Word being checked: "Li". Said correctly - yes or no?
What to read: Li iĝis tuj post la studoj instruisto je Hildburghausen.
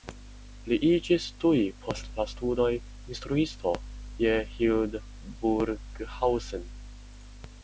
yes